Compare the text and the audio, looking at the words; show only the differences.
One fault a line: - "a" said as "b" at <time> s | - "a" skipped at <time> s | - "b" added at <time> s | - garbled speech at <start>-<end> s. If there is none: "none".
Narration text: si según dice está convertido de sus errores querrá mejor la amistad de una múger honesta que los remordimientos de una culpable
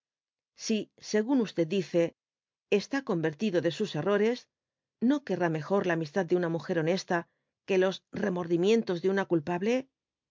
- "no" added at 5.0 s